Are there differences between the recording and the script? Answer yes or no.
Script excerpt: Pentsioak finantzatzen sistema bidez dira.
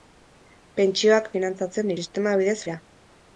no